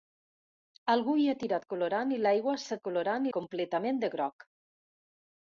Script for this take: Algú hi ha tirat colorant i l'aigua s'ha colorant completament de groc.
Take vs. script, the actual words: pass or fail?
pass